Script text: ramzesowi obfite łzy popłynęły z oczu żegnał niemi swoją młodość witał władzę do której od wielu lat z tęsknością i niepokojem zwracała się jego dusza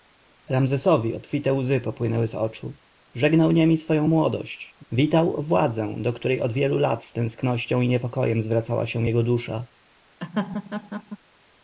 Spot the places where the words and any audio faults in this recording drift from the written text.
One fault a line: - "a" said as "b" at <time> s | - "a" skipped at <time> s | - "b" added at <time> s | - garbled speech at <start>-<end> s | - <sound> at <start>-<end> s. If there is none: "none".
- laugh at 10.2-11.2 s